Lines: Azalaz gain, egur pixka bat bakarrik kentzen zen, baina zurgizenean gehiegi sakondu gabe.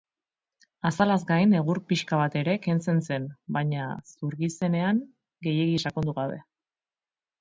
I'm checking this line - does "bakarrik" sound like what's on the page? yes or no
no